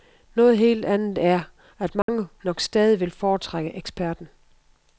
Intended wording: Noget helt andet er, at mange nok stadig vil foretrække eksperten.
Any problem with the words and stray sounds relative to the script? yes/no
yes